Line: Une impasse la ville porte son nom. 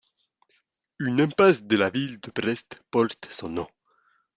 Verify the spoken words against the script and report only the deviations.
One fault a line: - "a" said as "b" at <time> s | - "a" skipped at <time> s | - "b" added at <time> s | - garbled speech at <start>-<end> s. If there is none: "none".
- "de" added at 1.6 s
- "de Brest" added at 2.2 s